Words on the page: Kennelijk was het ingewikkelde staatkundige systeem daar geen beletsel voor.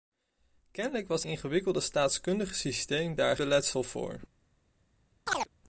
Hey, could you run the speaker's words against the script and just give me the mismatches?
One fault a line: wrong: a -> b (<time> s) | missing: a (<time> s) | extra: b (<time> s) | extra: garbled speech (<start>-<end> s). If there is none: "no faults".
missing: het (1.2 s)
missing: geen (3.4 s)